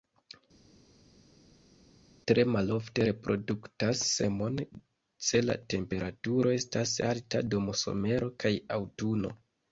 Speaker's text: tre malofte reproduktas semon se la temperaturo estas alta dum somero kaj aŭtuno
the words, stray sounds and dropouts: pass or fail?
pass